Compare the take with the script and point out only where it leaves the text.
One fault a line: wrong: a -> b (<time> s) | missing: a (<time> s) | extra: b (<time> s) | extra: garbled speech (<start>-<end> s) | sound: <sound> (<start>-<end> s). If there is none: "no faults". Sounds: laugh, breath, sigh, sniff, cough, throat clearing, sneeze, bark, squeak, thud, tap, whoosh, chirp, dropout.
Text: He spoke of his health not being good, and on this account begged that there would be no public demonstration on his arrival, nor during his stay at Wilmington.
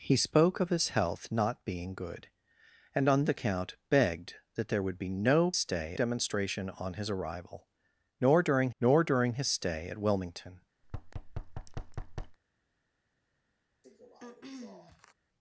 missing: this (3.2 s)
wrong: public -> stay (5.6 s)
extra: nor during (8.8 s)
sound: thud (10.8-12.4 s)
sound: throat clearing (13.8-15.1 s)